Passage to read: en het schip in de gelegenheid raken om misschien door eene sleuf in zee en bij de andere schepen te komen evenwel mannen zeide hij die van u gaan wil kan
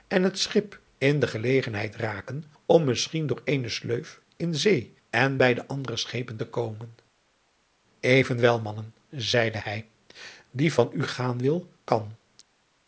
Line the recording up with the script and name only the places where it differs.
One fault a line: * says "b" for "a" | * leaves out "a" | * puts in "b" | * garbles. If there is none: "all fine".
all fine